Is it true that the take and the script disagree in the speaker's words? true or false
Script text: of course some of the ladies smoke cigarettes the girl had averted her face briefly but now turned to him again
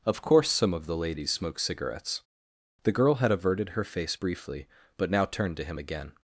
false